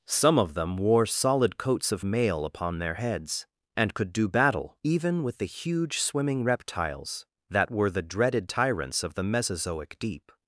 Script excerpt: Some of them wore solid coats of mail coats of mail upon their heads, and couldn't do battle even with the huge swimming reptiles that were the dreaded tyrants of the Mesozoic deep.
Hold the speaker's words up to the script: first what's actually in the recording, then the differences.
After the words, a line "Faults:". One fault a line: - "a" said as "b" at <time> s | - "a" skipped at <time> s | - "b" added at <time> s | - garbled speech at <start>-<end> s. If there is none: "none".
Some of them wore solid coats of mail upon their heads, and could do battle even with the huge swimming reptiles that were the dreaded tyrants of the Mesozoic deep.
Faults:
- "coats of mail" skipped at 2.4 s
- "couldn't" said as "could" at 3.9 s